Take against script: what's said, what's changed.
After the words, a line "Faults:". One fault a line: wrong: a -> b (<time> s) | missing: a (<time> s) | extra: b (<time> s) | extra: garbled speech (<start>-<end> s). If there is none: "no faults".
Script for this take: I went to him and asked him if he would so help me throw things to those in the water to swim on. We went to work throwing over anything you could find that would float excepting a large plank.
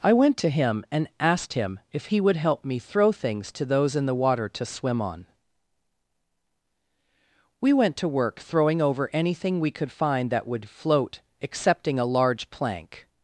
I went to him and asked him if he would help me throw things to those in the water to swim on. We went to work throwing over anything we could find that would float excepting a large plank.
Faults:
missing: so (2.4 s)
wrong: you -> we (9.6 s)